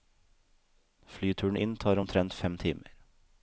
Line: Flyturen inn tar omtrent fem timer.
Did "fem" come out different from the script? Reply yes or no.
no